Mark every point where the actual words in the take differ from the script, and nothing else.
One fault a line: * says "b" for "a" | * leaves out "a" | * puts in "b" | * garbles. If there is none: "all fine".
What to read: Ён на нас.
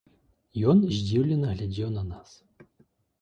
* puts in "здзіўлена глядзеў"